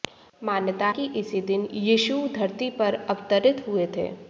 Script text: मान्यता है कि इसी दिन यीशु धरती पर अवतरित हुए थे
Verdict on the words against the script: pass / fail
fail